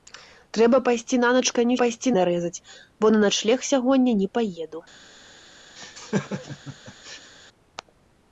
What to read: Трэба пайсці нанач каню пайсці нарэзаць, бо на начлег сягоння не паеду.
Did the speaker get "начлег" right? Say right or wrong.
right